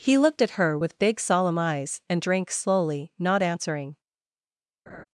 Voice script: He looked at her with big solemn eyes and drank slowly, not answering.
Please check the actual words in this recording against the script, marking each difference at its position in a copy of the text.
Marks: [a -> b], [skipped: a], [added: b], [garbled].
He looked at her with big solemn eyes and drank slowly, not answering.